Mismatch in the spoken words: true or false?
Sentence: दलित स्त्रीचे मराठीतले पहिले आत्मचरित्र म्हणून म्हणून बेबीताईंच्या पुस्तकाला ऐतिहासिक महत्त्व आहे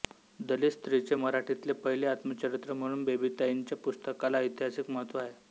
true